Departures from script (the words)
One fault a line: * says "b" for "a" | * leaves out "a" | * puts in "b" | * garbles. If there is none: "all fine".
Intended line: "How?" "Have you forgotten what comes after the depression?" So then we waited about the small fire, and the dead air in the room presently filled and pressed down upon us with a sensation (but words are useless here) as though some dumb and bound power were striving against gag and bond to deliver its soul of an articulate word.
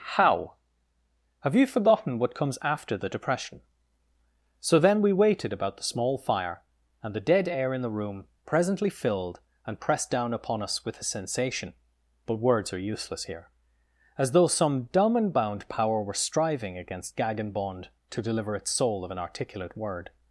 all fine